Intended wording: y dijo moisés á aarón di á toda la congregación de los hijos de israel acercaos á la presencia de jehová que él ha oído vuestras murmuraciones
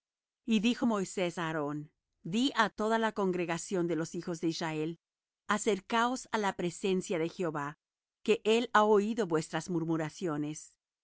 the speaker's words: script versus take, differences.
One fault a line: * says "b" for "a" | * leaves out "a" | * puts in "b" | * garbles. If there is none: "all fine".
all fine